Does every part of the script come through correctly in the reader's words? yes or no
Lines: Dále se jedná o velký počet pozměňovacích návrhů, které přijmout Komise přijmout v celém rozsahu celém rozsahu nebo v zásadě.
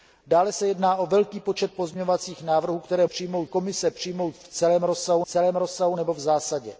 yes